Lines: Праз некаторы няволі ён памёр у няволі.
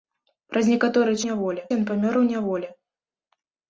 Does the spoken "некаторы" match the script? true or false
true